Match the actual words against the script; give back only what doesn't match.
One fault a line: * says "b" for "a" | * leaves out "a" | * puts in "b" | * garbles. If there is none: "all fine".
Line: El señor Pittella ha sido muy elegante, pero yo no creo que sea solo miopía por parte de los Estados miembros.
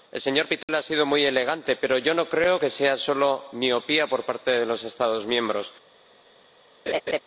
all fine